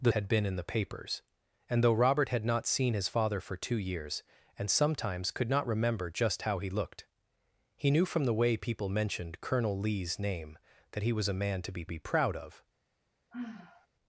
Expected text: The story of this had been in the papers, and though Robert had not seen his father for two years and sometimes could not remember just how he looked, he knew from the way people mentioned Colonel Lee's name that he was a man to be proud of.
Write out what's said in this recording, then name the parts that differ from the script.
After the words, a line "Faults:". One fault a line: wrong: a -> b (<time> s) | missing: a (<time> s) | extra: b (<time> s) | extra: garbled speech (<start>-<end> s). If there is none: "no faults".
The had been in the papers, and though Robert had not seen his father for two years and sometimes could not remember just how he looked, he knew from the way people mentioned Colonel Lee's name that he was a man to be be proud of.
Faults:
missing: story of this (0.1 s)
extra: be (11.9 s)